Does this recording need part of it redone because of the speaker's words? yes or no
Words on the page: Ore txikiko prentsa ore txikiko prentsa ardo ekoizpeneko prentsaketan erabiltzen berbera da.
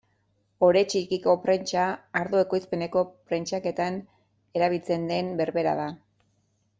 yes